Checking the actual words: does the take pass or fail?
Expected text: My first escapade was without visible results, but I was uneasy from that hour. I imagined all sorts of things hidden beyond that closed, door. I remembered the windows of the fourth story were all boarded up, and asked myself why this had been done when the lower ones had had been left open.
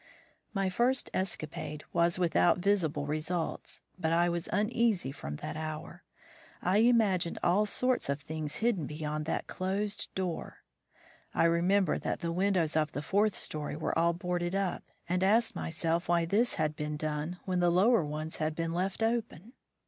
fail